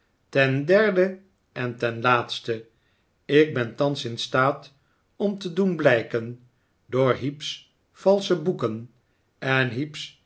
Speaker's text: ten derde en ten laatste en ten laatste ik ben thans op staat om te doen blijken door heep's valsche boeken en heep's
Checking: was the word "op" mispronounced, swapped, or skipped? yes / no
yes